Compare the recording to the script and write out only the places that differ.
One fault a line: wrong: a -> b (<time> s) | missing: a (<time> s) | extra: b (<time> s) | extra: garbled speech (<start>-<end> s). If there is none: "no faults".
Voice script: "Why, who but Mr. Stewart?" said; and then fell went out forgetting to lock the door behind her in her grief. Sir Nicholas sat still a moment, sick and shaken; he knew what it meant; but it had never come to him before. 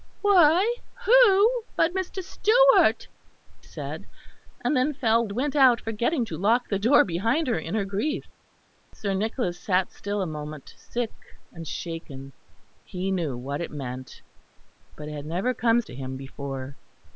no faults